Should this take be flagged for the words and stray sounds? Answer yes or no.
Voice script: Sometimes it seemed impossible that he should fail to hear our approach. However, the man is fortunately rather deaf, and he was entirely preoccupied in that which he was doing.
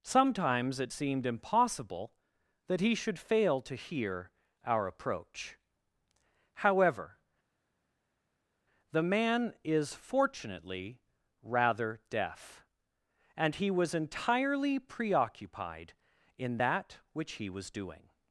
no